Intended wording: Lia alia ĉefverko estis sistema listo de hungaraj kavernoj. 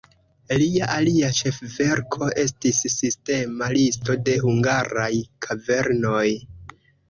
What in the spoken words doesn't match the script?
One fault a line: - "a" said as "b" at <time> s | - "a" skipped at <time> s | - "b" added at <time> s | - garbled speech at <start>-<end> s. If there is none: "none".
none